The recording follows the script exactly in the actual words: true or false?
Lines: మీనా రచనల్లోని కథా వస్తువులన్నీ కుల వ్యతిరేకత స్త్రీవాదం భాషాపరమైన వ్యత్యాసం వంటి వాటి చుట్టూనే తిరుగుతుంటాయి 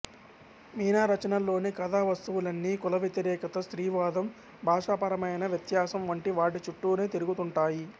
true